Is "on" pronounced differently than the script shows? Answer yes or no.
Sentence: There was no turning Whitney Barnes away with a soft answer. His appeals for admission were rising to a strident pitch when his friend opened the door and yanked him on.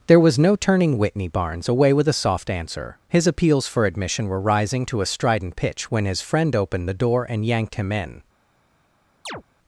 yes